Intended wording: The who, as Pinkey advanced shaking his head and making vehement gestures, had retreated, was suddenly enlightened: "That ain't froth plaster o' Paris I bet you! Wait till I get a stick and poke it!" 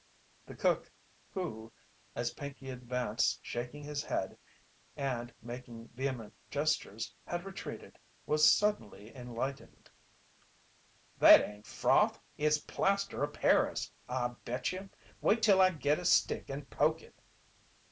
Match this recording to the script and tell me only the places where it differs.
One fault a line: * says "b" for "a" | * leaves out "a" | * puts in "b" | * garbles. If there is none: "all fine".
* puts in "cook"
* puts in "it's"